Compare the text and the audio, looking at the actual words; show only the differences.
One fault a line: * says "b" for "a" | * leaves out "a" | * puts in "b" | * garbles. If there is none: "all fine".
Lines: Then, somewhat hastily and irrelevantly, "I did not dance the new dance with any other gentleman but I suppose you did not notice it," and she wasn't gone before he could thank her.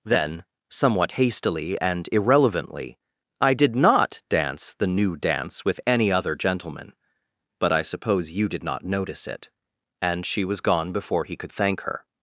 * says "was" for "wasn't"